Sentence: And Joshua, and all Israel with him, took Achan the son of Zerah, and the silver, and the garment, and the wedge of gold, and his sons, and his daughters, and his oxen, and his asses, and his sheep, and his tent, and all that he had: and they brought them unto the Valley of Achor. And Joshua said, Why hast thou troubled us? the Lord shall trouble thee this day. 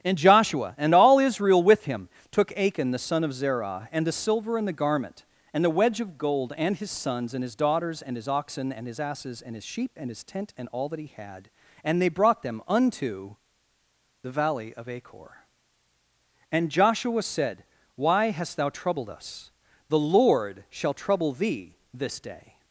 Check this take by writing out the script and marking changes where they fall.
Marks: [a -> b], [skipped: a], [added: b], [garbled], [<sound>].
And Joshua, and all Israel with him, took Achan the son of Zerah, and the silver, and the garment, and the wedge of gold, and his sons, and his daughters, and his oxen, and his asses, and his sheep, and his tent, and all that he had: and they brought them unto the Valley of Achor. And Joshua said, Why hast thou troubled us? the Lord shall trouble thee this day.